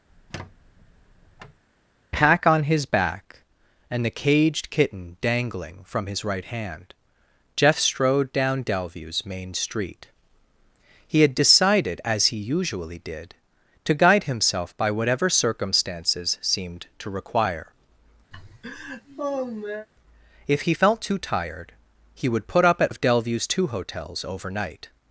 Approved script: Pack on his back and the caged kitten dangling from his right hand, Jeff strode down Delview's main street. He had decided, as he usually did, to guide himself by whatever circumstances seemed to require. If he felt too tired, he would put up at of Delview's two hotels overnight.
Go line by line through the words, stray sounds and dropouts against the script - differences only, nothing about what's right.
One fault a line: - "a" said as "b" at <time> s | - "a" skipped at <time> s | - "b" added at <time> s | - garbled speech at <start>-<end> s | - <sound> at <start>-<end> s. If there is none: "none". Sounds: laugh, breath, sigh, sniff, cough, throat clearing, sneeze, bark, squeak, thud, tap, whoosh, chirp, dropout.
- squeak at 0.1-1.6 s
- laugh at 18.3-19.9 s